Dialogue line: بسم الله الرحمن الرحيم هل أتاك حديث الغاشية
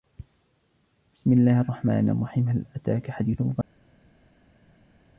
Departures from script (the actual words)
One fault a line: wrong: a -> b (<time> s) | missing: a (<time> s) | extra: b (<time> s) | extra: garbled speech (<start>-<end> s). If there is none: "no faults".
no faults